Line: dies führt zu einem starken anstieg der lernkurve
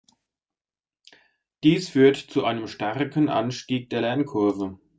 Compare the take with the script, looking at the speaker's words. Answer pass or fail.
pass